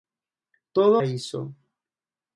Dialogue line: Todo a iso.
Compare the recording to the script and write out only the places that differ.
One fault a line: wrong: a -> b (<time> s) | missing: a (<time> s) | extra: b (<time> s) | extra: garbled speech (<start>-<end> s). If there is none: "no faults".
no faults